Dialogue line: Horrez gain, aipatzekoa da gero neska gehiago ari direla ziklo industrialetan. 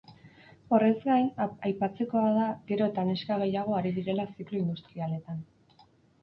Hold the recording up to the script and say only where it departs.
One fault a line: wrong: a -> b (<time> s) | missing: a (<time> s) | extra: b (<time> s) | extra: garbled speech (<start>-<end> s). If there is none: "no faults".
extra: eta (2.9 s)